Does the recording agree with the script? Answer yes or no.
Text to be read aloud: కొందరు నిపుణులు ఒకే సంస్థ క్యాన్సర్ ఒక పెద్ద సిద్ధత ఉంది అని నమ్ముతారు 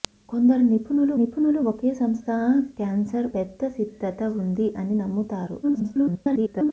no